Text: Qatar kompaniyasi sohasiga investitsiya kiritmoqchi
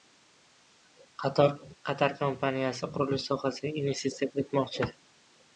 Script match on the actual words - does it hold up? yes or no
no